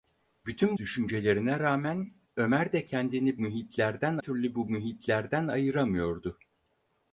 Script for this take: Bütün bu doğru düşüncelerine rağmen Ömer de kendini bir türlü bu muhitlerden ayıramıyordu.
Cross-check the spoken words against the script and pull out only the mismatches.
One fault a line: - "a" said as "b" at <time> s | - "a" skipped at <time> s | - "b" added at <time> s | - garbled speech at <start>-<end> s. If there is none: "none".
- "bu doğru" skipped at 0.8 s
- "bir" said as "muhitlerden" at 3.4 s